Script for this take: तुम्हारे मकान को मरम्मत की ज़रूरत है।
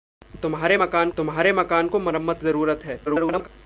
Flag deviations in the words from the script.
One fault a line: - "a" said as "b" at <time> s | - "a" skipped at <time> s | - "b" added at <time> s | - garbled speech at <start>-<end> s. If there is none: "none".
- "तुम्हारे मकान" added at 1.2 s
- "की" skipped at 2.4 s
- garbled speech at 3.1-3.5 s